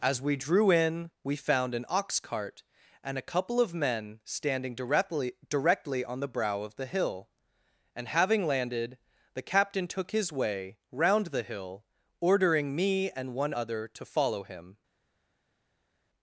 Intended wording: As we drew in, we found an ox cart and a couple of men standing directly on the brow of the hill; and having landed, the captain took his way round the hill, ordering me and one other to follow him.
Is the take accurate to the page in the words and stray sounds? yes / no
no